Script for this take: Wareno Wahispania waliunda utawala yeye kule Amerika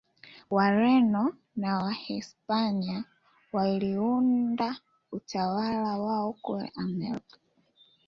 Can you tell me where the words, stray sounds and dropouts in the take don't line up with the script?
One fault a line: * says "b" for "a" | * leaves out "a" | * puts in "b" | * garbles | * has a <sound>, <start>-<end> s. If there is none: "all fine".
* puts in "na"
* says "wao" for "yeye"